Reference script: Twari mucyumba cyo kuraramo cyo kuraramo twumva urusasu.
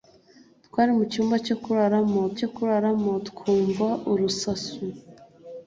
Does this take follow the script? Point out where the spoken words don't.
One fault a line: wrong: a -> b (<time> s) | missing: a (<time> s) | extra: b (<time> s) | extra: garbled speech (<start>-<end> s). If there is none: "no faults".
no faults